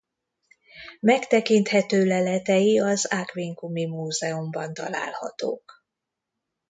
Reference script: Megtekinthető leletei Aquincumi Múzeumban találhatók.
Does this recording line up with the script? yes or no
no